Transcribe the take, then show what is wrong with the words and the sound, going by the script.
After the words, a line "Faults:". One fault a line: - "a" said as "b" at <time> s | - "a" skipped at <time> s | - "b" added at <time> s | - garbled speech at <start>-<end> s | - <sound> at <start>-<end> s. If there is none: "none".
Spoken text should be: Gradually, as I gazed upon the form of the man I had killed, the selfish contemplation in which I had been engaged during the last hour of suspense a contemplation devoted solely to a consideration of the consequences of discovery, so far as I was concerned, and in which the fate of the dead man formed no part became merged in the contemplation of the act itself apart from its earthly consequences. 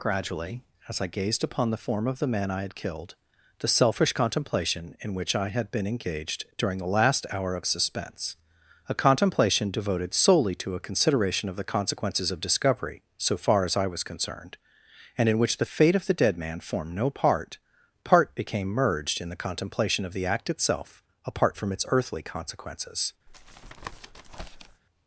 Gradually, as I gazed upon the form of the man I had killed, the selfish contemplation in which I had been engaged during the last hour of suspense a contemplation devoted solely to a consideration of the consequences of discovery, so far as I was concerned, and in which the fate of the dead man formed no part part became merged in the contemplation of the act itself apart from its earthly consequences.
Faults:
- "part" added at 18.0 s
- tap at 23.3-24.8 s